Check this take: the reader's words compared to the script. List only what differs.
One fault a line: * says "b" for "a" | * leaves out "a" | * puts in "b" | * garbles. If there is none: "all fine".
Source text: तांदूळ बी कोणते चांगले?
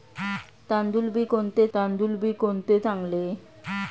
* puts in "तांदूळ बी कोणते"